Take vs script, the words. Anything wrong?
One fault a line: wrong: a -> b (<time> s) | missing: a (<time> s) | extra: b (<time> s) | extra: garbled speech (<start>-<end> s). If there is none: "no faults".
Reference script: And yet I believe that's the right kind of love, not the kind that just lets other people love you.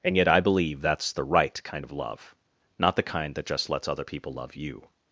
no faults